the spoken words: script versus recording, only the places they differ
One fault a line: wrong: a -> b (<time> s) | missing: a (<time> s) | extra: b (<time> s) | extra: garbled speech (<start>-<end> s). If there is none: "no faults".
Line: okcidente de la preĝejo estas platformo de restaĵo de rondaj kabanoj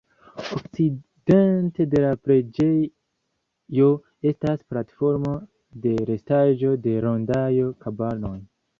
no faults